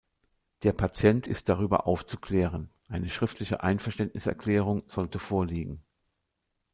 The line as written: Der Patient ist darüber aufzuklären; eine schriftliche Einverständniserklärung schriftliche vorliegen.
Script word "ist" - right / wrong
right